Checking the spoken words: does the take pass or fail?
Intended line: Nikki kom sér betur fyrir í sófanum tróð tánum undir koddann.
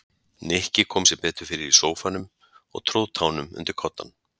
fail